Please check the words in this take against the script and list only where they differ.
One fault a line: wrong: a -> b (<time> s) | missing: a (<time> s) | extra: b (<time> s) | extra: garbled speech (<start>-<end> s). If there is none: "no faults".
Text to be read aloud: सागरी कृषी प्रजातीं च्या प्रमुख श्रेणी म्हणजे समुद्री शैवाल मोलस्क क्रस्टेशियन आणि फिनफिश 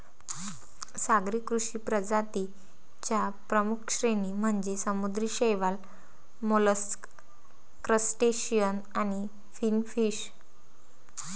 no faults